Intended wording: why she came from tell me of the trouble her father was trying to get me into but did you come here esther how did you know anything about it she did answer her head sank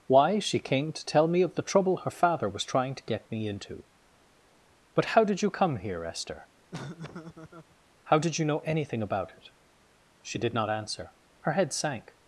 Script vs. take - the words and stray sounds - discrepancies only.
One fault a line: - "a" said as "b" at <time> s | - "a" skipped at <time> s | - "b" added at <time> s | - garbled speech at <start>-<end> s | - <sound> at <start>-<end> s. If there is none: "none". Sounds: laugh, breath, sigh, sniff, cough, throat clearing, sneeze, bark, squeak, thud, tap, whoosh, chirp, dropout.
- "from" said as "to" at 0.9 s
- "how" added at 5.0 s
- laugh at 6.7-7.8 s
- "not" added at 10.5 s